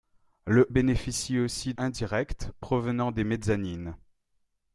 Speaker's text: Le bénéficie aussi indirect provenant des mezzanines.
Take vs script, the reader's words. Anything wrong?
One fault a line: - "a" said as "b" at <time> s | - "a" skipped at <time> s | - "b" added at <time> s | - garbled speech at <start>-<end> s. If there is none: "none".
none